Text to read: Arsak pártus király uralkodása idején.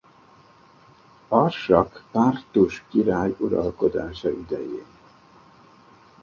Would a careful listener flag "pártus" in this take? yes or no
no